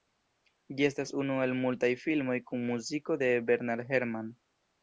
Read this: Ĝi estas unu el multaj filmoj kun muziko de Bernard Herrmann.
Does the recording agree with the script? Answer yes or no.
yes